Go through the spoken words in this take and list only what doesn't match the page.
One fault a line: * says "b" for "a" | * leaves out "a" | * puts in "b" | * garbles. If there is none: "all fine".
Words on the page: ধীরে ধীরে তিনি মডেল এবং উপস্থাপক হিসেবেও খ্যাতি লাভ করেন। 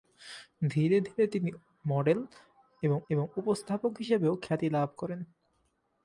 * puts in "এবং"